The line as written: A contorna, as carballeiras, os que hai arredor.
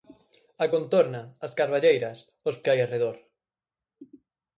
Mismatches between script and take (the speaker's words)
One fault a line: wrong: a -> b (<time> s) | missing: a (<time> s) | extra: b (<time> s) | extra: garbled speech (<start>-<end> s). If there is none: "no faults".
no faults